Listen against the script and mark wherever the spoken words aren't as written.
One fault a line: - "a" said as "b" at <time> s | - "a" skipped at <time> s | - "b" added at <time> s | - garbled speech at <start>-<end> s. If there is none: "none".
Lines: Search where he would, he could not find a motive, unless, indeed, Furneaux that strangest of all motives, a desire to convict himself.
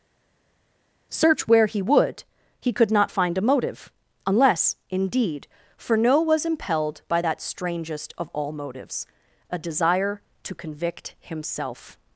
- "was impelled by" added at 6.2 s